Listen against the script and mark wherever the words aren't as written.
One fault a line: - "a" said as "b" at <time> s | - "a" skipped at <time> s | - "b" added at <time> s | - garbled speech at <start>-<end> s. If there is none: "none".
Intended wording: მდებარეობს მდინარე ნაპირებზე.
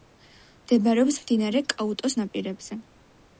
- "კაუტოს" added at 1.8 s